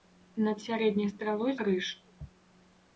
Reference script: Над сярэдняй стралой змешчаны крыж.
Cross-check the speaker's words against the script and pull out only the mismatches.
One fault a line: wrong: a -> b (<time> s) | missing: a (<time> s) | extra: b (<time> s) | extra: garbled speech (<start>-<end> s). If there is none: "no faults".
missing: змешчаны (1.5 s)